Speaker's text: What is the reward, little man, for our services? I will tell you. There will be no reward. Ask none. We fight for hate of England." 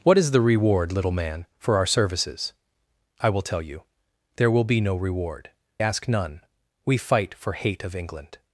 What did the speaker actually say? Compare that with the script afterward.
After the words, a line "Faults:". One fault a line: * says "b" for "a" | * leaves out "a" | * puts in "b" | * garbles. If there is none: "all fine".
What is the reward, little man, for our services? I will tell you. There will be no reward. Ask none. We fight for hate of England."
Faults:
all fine